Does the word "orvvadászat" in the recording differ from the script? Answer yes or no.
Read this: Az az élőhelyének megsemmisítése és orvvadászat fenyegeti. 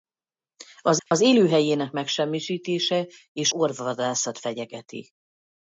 no